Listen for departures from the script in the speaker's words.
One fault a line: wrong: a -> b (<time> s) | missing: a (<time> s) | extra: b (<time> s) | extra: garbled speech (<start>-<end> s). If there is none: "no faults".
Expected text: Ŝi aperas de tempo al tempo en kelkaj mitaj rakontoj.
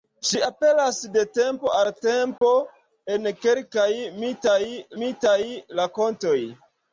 extra: mitaj (5.0 s)